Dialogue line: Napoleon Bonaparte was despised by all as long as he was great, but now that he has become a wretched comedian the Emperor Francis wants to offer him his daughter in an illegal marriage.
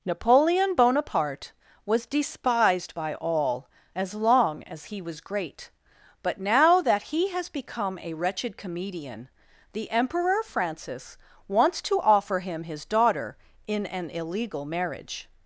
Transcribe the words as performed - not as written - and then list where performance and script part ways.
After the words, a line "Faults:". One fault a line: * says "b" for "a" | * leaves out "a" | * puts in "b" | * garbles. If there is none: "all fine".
Napoleon Bonaparte was despised by all as long as he was great, but now that he has become a wretched comedian the Emperor Francis wants to offer him his daughter in an illegal marriage.
Faults:
all fine